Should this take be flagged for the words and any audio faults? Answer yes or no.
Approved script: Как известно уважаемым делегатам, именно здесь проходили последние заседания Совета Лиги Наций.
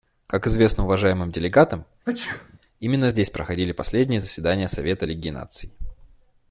yes